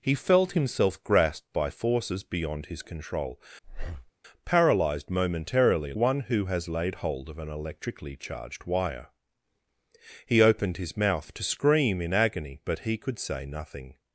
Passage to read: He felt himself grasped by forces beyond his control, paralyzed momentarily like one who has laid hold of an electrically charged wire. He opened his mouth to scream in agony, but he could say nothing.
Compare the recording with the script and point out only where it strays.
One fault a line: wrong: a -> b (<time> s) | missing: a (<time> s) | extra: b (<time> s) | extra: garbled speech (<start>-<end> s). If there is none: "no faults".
missing: like (5.9 s)